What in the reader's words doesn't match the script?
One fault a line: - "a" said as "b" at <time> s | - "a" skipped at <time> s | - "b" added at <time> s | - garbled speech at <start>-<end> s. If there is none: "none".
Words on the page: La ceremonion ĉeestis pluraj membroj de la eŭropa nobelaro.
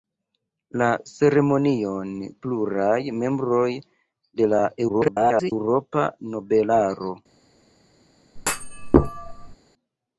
- "ĉeestis" skipped at 2.1 s
- garbled speech at 4.9-5.5 s